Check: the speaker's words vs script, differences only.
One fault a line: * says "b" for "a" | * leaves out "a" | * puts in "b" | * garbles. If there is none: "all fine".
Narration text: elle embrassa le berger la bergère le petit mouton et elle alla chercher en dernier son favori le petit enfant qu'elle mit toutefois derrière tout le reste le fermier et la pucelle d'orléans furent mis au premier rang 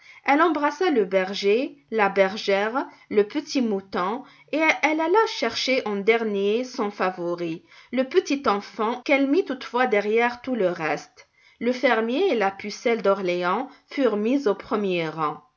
all fine